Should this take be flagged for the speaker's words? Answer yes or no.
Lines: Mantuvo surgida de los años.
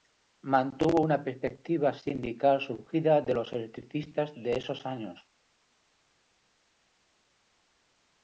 yes